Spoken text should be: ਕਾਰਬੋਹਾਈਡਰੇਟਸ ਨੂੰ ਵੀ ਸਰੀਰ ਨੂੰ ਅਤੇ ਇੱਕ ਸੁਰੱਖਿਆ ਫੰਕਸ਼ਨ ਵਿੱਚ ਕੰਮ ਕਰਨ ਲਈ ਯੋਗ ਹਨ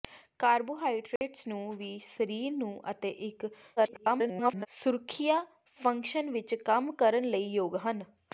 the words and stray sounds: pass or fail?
fail